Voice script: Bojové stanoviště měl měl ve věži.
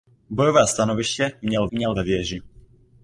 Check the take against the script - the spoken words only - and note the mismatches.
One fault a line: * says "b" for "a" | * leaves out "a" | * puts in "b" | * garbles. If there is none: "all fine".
all fine